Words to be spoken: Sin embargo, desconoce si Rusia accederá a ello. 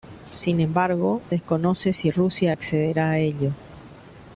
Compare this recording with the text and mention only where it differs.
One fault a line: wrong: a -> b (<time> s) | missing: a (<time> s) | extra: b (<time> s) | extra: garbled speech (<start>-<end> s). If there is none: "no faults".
no faults